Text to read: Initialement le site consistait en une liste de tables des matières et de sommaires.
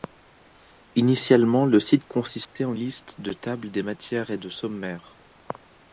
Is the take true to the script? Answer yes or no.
no